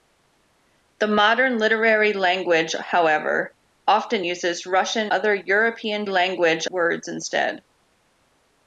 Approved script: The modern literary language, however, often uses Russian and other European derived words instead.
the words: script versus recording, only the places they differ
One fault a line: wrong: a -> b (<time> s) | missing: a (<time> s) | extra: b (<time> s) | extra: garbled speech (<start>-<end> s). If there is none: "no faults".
missing: and (5.1 s)
wrong: derived -> language (6.1 s)